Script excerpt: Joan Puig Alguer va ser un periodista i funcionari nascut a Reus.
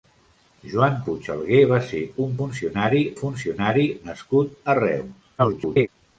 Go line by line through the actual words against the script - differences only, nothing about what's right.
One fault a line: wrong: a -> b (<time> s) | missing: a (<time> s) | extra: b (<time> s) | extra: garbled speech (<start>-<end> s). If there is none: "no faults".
wrong: periodista -> funcionari (2.4 s)
extra: garbled speech (5.4-5.9 s)